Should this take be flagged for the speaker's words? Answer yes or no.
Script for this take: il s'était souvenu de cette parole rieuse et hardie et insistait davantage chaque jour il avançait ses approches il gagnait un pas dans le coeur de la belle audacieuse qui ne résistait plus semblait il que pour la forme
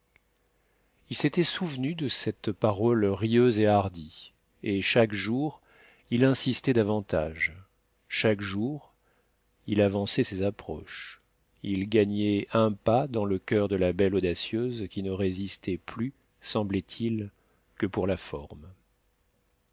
yes